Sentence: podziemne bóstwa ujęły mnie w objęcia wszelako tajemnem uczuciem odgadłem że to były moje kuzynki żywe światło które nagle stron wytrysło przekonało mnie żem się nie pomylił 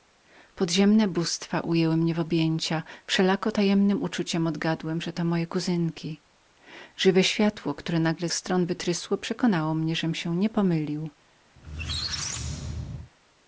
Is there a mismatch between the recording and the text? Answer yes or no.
no